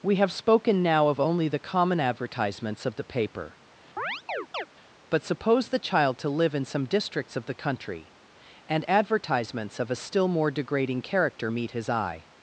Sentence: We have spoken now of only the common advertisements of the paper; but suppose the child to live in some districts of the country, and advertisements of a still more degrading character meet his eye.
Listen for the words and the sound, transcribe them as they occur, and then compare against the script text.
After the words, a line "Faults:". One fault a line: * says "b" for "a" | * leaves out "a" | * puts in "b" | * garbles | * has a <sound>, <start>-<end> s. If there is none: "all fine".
We have spoken now of only the common advertisements of the paper; but suppose the child to live in some districts of the country, and advertisements of a still more degrading character meet his eye.
Faults:
* has a chirp, 4.0-4.7 s